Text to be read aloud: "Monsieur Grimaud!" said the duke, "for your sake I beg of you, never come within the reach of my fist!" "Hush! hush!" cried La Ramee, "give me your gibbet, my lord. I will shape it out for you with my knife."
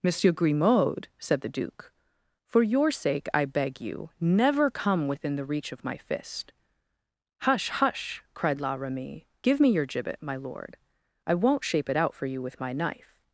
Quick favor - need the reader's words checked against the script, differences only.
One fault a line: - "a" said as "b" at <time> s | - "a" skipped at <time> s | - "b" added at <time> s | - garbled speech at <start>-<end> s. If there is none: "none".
- "of" skipped at 3.8 s
- "will" said as "won't" at 11.3 s